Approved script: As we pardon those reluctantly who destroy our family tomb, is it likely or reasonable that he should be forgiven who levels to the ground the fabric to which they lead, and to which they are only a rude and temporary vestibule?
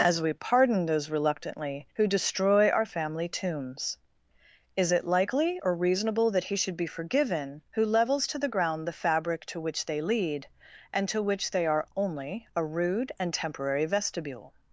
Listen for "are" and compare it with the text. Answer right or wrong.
right